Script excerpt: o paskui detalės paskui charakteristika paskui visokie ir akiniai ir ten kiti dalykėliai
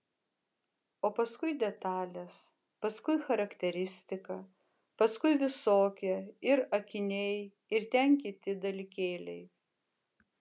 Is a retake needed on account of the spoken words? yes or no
no